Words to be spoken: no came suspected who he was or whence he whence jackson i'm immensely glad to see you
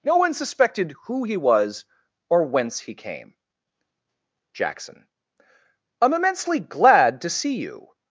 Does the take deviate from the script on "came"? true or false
true